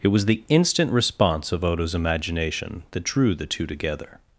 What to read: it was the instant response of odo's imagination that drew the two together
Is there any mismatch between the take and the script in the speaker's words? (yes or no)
no